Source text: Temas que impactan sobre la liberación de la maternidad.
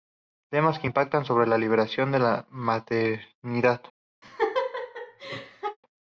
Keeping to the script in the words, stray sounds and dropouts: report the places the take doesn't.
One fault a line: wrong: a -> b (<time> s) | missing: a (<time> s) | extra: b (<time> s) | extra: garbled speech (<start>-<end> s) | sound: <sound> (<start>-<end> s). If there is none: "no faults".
sound: laugh (4.2-5.8 s)